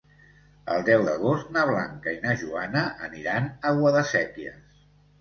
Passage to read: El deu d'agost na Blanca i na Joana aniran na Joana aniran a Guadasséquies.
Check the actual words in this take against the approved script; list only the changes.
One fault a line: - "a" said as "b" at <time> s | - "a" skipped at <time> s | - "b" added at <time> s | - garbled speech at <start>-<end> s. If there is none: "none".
- "na Joana aniran" skipped at 3.5 s